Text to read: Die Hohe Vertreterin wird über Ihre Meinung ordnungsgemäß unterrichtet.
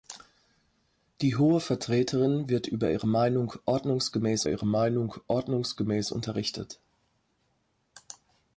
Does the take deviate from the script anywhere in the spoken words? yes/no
yes